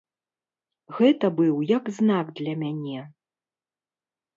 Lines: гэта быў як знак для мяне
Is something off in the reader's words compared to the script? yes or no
no